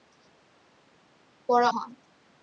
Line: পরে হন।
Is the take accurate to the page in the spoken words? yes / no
yes